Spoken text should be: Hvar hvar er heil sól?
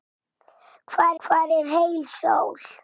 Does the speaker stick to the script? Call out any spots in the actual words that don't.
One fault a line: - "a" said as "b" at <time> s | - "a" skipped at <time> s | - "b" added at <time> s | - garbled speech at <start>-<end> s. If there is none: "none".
none